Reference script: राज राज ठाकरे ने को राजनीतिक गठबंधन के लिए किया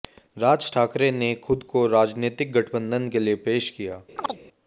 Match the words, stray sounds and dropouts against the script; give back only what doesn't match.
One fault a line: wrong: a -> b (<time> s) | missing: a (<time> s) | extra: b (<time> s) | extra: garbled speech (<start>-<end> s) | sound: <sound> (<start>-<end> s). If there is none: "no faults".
missing: राज (0.7 s)
extra: खुद (1.4 s)
extra: पेश (3.5 s)
sound: chirp (4.2-4.4 s)